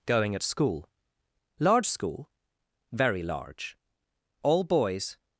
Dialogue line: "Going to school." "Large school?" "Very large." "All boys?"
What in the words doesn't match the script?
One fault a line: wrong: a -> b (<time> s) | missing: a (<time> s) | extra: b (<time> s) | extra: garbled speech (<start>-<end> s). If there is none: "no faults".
wrong: to -> at (0.3 s)